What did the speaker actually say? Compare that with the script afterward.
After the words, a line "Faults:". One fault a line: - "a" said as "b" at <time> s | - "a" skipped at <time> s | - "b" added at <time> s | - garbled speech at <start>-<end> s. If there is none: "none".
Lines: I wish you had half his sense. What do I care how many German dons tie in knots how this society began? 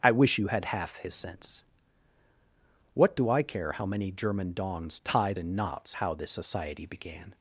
I wish you had half his sense. What do I care how many German dons tie in knots how this society began?
Faults:
none